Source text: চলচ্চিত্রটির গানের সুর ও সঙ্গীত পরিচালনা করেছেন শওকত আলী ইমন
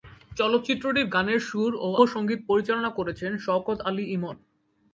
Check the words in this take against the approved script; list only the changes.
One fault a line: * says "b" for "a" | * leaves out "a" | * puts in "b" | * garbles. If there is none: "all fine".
all fine